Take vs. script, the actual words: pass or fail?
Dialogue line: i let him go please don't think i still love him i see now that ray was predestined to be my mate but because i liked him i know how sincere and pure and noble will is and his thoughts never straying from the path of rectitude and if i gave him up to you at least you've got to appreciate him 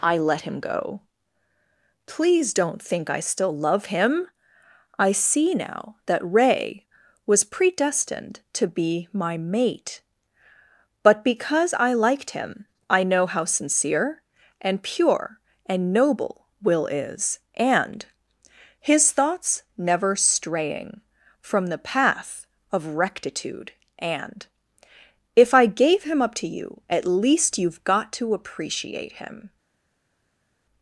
pass